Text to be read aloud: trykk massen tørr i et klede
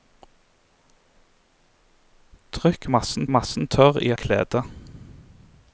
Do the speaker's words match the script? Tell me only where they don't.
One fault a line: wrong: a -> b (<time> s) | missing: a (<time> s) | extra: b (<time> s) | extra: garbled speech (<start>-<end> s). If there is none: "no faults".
extra: massen (3.3 s)
missing: et (4.1 s)